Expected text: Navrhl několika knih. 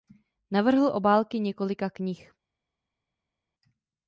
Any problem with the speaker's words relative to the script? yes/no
yes